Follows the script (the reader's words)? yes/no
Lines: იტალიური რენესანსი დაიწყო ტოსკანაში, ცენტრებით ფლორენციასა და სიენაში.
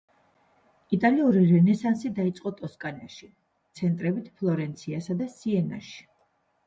yes